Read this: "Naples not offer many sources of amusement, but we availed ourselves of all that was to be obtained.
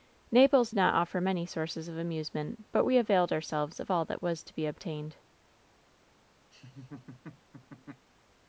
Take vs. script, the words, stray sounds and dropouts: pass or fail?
fail